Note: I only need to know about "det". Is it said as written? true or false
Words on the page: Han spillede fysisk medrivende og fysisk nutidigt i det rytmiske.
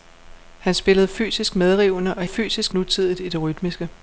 true